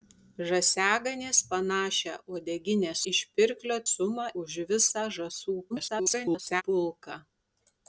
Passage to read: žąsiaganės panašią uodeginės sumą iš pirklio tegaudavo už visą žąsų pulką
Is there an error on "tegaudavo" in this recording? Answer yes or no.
yes